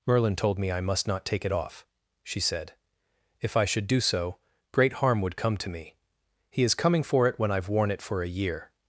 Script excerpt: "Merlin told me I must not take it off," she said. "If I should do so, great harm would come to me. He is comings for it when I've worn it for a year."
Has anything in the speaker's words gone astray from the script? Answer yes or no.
yes